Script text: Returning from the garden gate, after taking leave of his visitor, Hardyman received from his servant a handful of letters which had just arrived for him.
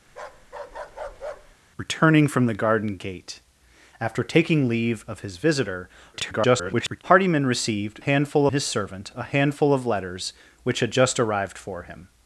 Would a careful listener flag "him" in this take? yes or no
no